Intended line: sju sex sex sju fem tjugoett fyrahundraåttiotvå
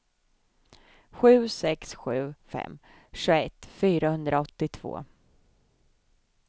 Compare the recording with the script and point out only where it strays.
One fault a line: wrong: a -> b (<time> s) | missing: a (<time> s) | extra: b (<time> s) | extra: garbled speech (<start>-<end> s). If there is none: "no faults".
missing: sex (1.9 s)